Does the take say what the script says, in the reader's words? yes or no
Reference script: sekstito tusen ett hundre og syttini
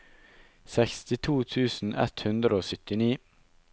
yes